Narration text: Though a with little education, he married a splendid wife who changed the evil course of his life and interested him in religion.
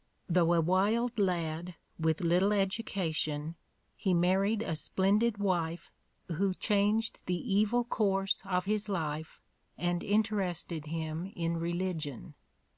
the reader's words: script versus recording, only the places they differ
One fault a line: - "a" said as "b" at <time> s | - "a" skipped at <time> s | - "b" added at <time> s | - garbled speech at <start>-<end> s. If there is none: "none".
- "wild lad" added at 0.6 s